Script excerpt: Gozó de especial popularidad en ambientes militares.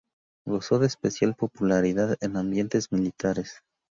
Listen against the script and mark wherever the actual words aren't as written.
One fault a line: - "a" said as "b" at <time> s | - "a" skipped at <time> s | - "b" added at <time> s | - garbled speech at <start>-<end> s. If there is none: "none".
none